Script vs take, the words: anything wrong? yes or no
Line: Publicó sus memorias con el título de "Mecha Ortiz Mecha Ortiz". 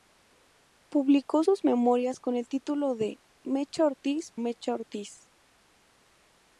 no